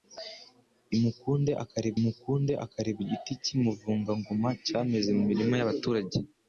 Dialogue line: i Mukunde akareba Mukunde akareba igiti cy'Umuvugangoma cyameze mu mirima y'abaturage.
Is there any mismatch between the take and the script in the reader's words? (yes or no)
no